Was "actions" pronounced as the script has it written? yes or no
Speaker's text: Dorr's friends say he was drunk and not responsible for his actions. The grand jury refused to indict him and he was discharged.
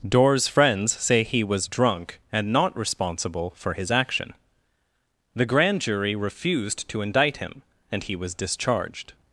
no